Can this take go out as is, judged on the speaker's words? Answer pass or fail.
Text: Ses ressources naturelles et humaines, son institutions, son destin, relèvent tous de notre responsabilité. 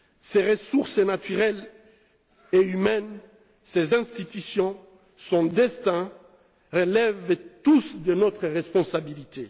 fail